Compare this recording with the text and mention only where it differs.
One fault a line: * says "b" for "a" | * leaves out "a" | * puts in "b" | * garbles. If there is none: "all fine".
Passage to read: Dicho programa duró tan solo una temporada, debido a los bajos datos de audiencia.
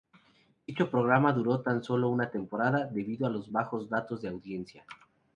all fine